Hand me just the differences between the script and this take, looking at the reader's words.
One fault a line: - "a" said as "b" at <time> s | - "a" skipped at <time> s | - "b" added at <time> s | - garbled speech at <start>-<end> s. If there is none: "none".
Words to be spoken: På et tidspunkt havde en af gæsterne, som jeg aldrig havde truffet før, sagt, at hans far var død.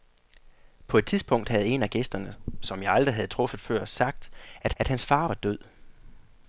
- "at" added at 4.8 s